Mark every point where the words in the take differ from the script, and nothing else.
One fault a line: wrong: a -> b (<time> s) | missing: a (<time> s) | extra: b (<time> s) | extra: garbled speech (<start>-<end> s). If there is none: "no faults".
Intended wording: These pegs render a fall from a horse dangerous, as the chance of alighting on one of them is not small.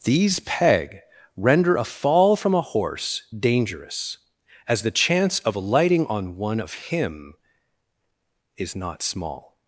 wrong: pegs -> peg (0.4 s)
wrong: them -> him (6.7 s)